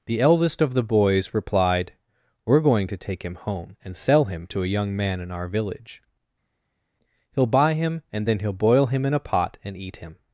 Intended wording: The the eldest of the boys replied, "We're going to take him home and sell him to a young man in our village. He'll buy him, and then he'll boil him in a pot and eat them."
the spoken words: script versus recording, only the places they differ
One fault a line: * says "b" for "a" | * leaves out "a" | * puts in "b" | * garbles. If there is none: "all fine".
* leaves out "the"
* says "him" for "them"